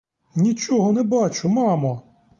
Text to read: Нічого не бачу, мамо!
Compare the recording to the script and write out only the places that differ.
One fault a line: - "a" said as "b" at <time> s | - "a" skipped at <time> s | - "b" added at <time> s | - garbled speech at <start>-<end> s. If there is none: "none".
none